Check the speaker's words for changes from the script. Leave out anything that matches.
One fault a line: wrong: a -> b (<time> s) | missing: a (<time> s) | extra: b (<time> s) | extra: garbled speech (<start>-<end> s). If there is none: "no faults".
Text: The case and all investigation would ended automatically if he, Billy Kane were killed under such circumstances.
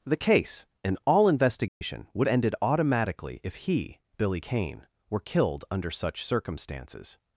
no faults